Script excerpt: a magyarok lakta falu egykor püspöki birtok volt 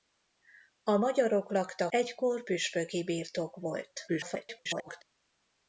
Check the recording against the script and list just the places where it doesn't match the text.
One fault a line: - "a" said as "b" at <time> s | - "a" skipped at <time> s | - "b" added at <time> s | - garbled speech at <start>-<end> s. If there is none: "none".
- "falu" skipped at 1.9 s
- garbled speech at 4.1-5.0 s